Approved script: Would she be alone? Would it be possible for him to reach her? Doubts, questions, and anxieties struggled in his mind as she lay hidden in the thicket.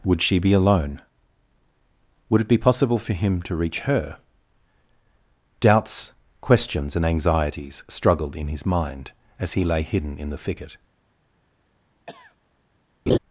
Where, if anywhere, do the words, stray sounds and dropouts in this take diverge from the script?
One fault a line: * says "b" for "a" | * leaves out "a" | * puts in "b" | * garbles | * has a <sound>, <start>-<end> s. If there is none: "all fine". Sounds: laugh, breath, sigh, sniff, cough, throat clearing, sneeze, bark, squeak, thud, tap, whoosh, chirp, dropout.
* says "he" for "she"
* has a cough, 12.1-12.4 s
* has a laugh, 13.1-13.2 s